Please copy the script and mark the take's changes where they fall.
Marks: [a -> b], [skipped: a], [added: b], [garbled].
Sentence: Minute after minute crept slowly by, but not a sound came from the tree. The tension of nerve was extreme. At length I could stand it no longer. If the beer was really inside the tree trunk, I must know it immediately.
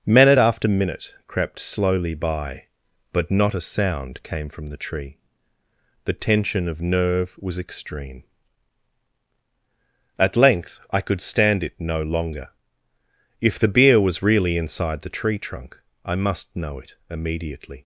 Minute after minute crept slowly by, but not a sound came from the tree. The tension of nerve was extreme. At length I could stand it no longer. If the beer was really inside the tree trunk, I must know it immediately.